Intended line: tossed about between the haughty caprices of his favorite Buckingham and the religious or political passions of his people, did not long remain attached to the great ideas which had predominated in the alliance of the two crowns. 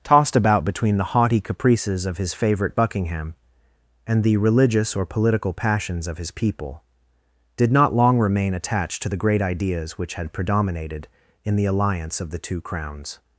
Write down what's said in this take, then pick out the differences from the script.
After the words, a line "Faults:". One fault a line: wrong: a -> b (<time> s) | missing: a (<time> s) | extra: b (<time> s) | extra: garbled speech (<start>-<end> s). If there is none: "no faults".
tossed about between the haughty caprices of his favorite Buckingham and the religious or political passions of his people, did not long remain attached to the great ideas which had predominated in the alliance of the two crowns.
Faults:
no faults